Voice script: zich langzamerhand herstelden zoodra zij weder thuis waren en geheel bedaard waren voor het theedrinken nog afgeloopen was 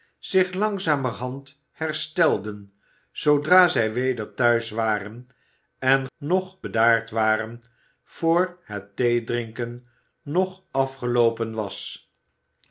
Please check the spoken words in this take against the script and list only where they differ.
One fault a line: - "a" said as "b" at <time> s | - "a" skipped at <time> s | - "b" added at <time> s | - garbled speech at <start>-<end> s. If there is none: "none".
- "geheel" said as "nog" at 6.2 s